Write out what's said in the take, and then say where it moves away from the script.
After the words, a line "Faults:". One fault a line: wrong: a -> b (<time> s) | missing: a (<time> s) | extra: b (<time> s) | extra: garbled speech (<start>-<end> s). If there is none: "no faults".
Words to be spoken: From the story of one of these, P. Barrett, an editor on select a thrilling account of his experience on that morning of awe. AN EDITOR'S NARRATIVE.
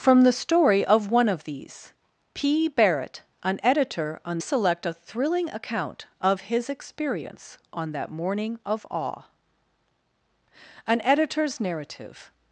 From the story of one of these, P. Barrett, an editor on select a thrilling account of his experience on that morning of awe. AN EDITOR'S NARRATIVE.
Faults:
no faults